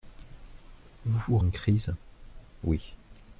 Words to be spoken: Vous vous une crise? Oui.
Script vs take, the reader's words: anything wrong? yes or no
no